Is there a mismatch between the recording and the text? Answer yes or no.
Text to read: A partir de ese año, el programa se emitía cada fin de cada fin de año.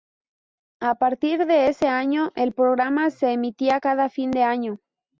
yes